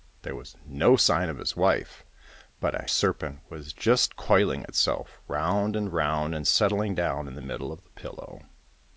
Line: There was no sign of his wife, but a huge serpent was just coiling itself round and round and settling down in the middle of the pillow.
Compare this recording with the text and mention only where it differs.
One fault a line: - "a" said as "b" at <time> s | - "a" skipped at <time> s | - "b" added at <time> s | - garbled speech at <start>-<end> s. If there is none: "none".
- "huge" skipped at 2.9 s